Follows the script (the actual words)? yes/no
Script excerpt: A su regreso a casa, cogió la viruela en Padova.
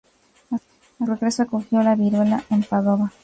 no